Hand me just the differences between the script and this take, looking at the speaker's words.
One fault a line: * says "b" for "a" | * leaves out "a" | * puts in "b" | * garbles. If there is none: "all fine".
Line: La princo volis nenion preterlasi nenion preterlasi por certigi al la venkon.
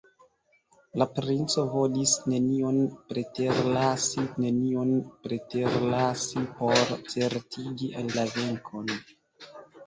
all fine